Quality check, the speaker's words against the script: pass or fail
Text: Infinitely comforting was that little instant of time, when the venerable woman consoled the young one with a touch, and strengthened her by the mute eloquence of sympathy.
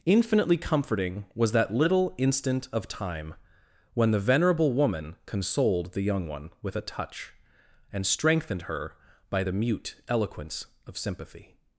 pass